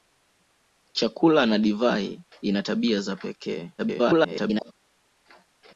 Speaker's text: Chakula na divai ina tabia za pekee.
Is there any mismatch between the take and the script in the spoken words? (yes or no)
yes